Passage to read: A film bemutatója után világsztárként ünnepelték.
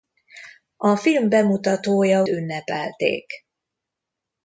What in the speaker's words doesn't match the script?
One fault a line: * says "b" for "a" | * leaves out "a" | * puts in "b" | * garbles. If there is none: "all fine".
* leaves out "után világsztárként"